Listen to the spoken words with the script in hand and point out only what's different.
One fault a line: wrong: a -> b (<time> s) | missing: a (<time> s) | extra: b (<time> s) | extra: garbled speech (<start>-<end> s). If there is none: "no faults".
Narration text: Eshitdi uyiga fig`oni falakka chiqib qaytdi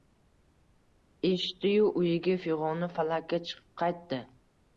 extra: yu (1.7 s)